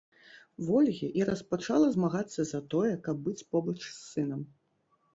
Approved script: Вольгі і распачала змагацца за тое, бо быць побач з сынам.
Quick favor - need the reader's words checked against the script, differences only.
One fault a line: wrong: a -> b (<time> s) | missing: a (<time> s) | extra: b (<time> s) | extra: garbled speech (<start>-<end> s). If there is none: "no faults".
wrong: бо -> каб (3.1 s)